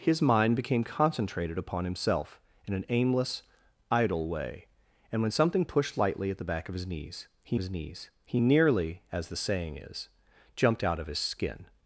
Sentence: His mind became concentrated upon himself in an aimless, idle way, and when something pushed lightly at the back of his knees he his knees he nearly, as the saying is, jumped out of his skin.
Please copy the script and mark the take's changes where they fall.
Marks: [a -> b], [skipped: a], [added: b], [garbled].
His mind became concentrated upon himself in an aimless, idle way, and when something pushed lightly at the back of his knees he his knees he nearly, as the saying is, jumped out of his skin.